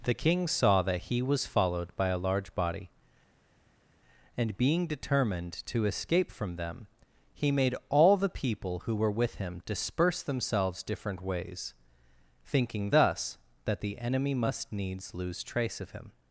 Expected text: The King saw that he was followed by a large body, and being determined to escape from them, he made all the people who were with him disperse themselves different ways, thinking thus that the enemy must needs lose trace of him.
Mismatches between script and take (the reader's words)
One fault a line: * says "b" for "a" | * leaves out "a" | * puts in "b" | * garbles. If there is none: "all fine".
all fine